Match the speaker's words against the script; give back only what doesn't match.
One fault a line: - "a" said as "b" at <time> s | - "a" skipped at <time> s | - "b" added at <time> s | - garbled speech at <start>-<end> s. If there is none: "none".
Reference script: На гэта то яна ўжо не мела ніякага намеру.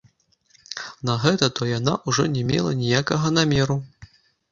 none